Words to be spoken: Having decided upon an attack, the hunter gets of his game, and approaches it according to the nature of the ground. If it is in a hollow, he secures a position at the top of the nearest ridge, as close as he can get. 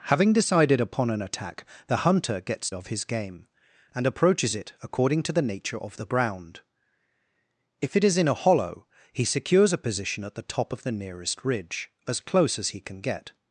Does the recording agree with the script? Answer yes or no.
yes